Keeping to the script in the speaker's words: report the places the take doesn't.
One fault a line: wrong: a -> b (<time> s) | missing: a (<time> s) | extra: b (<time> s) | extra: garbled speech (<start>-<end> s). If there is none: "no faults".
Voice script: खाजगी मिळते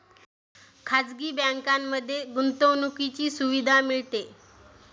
extra: बँकांमध्ये गुंतवणुकीची सुविधा (1.3 s)